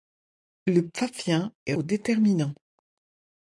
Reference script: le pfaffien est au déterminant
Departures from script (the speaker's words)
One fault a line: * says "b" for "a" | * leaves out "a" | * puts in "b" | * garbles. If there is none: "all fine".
all fine